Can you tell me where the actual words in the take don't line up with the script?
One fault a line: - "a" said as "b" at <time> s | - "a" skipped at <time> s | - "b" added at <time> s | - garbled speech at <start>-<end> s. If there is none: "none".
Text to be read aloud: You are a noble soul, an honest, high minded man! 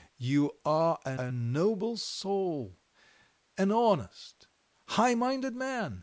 - "a" added at 1.2 s